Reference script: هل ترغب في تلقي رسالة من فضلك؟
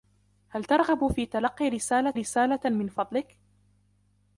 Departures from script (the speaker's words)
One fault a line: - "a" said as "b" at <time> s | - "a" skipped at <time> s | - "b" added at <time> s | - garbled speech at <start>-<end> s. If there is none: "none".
- "رسالة" added at 2.1 s